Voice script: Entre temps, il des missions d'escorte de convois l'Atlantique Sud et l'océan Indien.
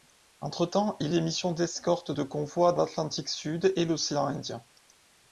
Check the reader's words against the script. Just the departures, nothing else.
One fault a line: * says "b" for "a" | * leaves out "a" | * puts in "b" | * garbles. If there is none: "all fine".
all fine